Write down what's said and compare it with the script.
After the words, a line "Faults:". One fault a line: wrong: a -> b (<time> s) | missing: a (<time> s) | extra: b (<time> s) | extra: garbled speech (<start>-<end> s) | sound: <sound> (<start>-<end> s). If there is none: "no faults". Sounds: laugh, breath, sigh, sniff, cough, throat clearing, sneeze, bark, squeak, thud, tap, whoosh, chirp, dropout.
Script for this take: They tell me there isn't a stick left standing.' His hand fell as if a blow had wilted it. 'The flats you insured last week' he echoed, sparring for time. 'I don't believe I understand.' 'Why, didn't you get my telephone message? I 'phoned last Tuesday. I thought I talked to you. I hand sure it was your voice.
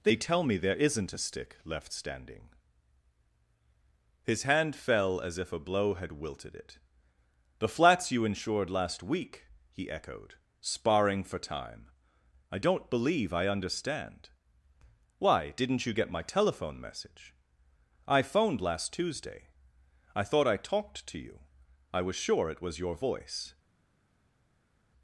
They tell me there isn't a stick left standing.' His hand fell as if a blow had wilted it. 'The flats you insured last week' he echoed, sparring for time. 'I don't believe I understand.' 'Why, didn't you get my telephone message? I 'phoned last Tuesday. I thought I talked to you. I was sure it was your voice.
Faults:
wrong: hand -> was (22.0 s)